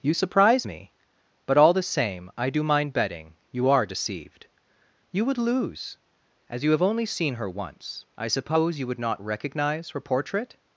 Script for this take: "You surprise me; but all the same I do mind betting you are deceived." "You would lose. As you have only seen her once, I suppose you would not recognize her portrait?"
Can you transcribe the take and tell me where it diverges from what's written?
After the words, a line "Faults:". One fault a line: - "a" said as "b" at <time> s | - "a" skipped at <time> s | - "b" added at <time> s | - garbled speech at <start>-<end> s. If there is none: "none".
"You surprise me; but all the same I do mind betting you are deceived." "You would lose. As you have only seen her once, I suppose you would not recognize her portrait?"
Faults:
none